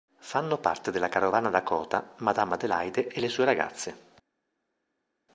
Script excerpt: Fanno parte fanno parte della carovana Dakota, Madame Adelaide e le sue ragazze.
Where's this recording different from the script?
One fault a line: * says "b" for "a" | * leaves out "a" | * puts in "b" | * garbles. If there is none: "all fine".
* leaves out "fanno parte"